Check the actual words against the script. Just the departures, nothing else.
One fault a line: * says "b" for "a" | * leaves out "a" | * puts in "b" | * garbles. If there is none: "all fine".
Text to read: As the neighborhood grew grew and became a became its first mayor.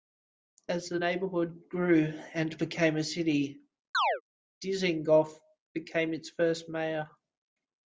* leaves out "grew"
* puts in "city Dizengoff"